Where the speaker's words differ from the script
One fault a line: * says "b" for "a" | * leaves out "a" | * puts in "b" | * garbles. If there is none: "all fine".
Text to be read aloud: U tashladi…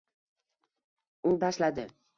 all fine